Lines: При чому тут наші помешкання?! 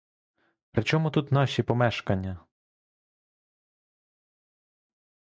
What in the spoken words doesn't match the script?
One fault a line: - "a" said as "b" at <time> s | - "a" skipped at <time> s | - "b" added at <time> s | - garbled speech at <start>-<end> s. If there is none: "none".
none